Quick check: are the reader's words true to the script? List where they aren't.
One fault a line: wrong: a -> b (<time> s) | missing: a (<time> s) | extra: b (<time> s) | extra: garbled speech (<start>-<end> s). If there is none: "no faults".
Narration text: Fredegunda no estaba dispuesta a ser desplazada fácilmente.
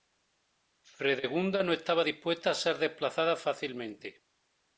no faults